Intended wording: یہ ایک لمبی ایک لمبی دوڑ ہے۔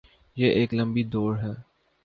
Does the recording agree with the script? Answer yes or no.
no